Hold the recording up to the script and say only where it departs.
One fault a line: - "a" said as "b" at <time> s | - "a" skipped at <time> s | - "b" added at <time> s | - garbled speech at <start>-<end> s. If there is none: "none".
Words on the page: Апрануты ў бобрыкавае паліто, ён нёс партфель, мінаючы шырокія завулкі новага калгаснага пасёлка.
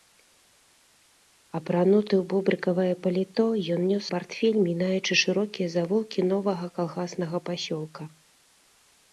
none